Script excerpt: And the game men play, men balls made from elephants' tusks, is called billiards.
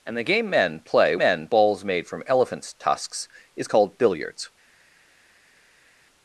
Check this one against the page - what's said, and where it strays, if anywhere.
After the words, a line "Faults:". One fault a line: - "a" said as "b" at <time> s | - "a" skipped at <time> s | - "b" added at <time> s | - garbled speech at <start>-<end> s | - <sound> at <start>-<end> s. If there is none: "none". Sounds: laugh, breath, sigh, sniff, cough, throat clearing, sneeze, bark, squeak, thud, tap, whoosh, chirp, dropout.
And the game men play, men balls made from elephants' tusks, is called billiards.
Faults:
none